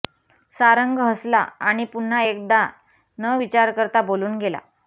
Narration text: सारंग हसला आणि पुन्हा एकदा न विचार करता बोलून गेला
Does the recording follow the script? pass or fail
pass